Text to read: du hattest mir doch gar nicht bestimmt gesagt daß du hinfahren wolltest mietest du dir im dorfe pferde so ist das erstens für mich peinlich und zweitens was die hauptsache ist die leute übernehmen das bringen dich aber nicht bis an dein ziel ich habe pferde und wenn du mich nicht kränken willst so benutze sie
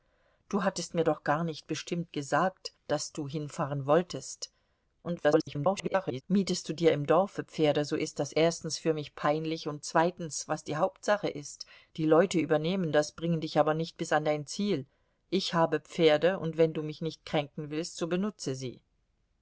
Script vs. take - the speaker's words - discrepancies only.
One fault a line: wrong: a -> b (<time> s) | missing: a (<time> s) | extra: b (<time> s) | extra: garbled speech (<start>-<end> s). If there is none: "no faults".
extra: garbled speech (5.0-6.2 s)